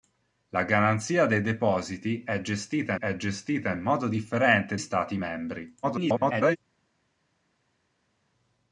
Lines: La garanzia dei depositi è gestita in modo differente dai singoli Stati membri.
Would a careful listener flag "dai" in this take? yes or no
yes